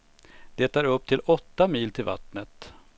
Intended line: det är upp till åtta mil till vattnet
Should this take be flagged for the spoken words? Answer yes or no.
no